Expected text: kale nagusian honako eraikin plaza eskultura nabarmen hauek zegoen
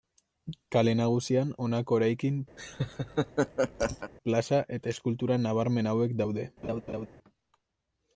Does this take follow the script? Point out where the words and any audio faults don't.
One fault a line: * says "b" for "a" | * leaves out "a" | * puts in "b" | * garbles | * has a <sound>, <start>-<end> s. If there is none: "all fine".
* has a laugh, 2.6-4.1 s
* puts in "eta"
* says "daude" for "zegoen"
* has a laugh, 6.6-7.1 s